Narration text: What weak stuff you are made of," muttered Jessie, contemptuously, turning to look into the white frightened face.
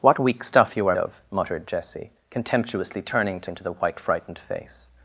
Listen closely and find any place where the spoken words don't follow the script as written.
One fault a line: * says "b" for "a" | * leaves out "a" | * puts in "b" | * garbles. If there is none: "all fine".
* leaves out "made"
* leaves out "look"